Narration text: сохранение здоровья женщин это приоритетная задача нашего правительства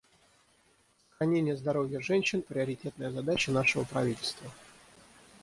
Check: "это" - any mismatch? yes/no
yes